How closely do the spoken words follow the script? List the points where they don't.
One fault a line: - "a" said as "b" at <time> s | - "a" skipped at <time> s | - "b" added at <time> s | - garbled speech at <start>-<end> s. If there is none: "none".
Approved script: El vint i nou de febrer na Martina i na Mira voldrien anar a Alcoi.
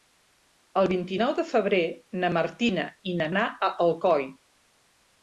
- "Mira voldrien" skipped at 3.3 s